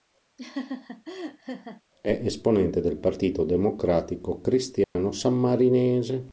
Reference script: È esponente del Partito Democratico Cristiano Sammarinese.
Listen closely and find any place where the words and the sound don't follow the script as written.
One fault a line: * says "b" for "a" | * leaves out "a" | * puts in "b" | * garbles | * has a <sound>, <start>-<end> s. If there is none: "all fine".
* has a laugh, 0.4-1.8 s
* has a dropout, 4.8-5.0 s